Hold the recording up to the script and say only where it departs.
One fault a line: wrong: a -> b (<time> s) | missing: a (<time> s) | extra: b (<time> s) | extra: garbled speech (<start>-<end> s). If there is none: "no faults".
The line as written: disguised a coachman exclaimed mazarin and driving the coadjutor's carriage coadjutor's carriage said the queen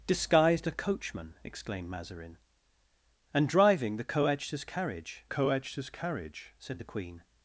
no faults